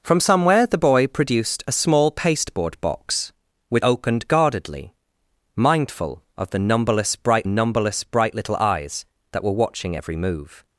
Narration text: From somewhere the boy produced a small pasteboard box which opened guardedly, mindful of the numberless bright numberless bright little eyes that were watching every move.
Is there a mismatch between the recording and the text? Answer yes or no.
no